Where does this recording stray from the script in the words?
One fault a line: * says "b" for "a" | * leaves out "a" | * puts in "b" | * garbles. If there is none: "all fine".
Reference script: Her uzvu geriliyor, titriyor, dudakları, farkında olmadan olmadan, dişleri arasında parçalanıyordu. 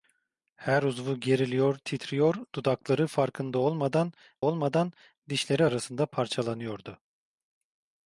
all fine